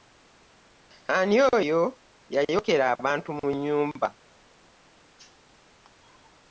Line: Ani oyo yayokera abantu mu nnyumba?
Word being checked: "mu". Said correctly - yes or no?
yes